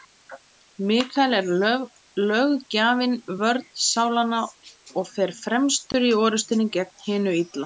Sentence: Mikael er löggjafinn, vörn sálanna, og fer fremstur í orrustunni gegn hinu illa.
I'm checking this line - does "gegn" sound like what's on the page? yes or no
yes